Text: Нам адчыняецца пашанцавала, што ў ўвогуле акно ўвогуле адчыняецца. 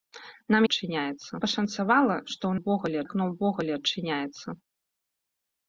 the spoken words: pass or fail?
pass